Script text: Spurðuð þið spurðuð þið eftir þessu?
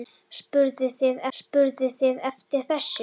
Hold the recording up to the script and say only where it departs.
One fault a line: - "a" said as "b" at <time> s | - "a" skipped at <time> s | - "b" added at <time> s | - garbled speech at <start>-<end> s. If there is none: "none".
none